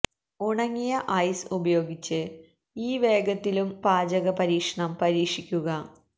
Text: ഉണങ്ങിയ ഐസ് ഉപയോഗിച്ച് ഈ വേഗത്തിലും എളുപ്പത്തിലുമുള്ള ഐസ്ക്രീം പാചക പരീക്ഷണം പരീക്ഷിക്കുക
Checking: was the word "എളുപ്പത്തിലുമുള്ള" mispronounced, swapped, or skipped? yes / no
yes